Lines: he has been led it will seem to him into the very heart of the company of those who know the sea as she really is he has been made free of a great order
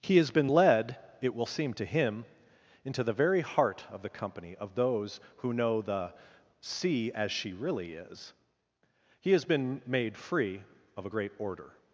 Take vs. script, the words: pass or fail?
pass